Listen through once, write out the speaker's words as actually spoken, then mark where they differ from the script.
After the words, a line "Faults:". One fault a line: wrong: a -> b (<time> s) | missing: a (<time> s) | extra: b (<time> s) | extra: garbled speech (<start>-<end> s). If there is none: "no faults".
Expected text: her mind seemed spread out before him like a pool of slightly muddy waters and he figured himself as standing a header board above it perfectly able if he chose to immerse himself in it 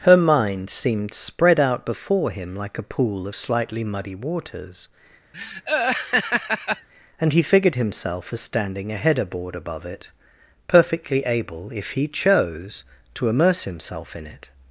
her mind seemed spread out before him like a pool of slightly muddy waters and he figured himself as standing a header board above it perfectly able if he chose to immerse himself in it
Faults:
no faults